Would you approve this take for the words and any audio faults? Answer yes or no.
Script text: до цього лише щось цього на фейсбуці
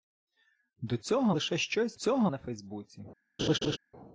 no